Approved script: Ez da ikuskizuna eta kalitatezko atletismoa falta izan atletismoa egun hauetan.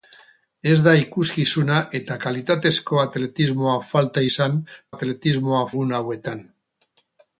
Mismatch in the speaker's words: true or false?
false